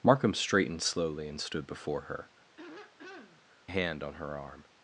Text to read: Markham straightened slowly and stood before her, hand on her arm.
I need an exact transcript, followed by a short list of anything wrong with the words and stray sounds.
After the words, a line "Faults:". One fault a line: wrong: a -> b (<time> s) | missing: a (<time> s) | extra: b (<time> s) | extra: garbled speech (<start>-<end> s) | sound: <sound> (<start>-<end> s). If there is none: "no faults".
Markham straightened slowly and stood before her, hand on her arm.
Faults:
sound: throat clearing (2.6-3.4 s)